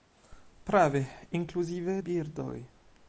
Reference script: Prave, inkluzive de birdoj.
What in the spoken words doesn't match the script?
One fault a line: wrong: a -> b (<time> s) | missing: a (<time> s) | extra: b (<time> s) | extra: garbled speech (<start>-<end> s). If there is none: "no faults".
missing: de (2.0 s)